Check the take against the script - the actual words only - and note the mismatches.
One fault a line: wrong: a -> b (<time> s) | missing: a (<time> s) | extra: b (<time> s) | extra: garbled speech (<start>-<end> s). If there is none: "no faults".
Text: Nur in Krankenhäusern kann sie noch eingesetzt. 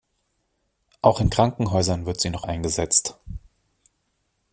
wrong: Nur -> Auch (1.0 s)
wrong: kann -> wird (2.1 s)